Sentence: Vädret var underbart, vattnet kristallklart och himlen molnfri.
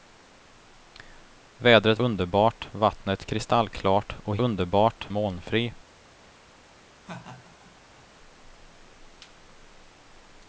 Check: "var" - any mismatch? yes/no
yes